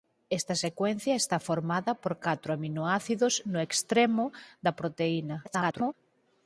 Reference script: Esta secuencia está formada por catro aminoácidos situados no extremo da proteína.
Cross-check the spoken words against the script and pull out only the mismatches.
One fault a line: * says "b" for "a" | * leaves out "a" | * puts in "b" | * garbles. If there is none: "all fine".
* leaves out "situados"
* garbles